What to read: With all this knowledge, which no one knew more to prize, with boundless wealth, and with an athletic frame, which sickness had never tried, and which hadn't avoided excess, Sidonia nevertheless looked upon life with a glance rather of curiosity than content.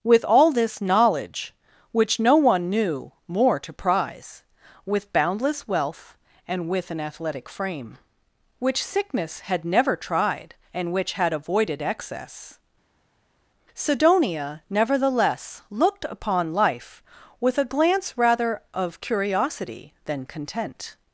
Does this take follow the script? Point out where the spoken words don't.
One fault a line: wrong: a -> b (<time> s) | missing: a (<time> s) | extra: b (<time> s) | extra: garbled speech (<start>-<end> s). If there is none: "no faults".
wrong: hadn't -> had (11.1 s)